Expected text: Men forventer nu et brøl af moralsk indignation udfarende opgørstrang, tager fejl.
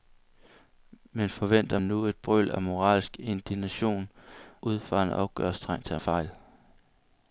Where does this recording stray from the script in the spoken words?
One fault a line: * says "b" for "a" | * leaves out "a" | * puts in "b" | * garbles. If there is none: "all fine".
all fine